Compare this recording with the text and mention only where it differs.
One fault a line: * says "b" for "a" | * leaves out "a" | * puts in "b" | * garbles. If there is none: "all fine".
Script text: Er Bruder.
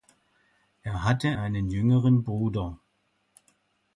* puts in "hatte einen jüngeren"